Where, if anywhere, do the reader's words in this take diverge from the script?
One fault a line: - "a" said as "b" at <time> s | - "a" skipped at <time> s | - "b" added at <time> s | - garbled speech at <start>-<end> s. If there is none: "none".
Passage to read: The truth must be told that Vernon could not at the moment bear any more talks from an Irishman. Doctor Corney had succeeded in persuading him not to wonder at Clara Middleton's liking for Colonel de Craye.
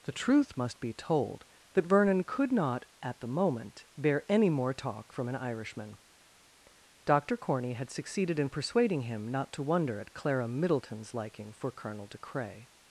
- "talks" said as "talk" at 4.7 s